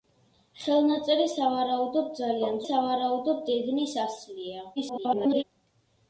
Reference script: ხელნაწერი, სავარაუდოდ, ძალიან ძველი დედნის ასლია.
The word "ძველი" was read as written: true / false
false